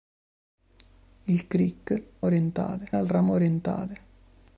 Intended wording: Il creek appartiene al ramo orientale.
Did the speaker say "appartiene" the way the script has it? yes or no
no